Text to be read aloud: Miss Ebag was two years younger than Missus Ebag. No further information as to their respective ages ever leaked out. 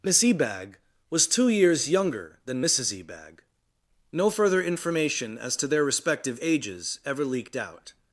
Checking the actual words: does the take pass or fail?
pass